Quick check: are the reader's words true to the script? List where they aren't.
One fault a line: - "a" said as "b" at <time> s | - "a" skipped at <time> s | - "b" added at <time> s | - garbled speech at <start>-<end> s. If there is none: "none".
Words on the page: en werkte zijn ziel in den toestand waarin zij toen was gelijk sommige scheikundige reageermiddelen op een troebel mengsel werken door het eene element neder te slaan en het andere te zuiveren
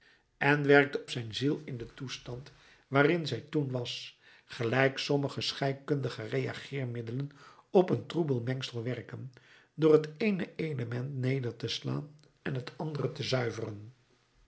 none